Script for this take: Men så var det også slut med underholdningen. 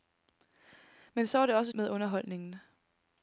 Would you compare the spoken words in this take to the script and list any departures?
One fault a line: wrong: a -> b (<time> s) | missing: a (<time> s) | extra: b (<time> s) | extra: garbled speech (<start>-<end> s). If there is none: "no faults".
missing: slut (1.7 s)